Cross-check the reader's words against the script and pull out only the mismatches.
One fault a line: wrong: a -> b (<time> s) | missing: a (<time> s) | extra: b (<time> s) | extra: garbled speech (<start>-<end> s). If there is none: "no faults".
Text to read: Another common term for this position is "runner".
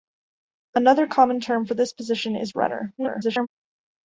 extra: garbled speech (3.0-3.5 s)